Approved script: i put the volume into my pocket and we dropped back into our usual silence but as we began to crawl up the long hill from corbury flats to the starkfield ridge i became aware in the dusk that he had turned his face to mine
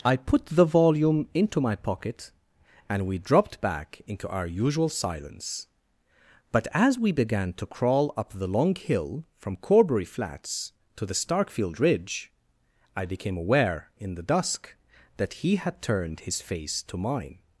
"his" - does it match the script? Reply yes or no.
yes